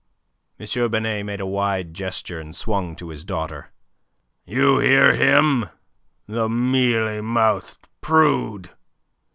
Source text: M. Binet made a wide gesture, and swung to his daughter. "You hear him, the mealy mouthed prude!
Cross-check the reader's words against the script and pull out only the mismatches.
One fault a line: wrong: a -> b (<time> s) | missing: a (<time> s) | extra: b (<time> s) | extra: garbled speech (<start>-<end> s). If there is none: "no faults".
no faults